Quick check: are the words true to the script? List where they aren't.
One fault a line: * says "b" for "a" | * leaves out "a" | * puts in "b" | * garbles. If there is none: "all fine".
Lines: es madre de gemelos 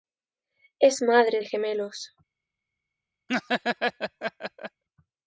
all fine